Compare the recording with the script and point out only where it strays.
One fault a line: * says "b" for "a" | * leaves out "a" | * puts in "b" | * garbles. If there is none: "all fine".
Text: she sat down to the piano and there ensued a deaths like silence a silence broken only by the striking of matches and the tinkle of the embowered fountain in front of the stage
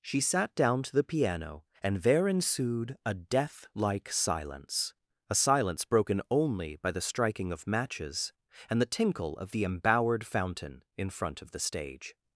* says "death" for "deaths"